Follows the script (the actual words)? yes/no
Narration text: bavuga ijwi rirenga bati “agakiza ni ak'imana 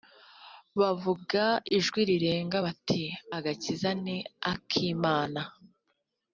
yes